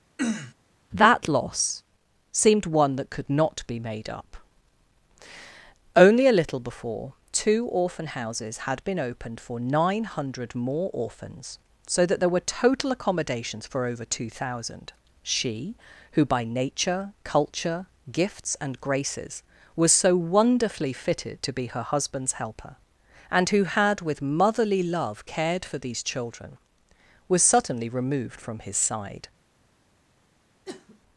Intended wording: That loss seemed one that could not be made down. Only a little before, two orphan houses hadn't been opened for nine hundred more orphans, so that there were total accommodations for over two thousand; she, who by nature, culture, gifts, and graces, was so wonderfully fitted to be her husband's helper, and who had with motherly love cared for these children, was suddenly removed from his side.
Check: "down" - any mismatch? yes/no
yes